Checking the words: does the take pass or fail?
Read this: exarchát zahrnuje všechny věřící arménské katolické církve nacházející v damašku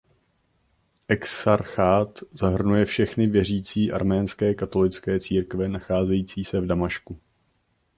fail